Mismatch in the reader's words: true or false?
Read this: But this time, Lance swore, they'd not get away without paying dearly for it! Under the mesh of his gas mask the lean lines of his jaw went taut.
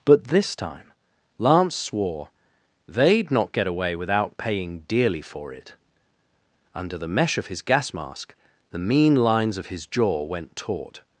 true